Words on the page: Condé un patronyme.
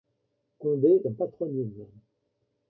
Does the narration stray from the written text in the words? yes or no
no